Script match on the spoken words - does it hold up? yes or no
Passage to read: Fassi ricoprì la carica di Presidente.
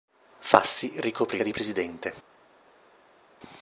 no